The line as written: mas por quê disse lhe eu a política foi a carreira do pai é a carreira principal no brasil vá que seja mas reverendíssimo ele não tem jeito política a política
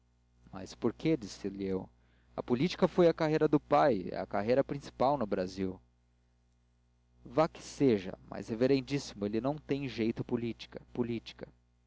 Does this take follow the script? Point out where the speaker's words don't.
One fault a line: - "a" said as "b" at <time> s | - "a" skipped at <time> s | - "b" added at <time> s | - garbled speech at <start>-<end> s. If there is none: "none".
none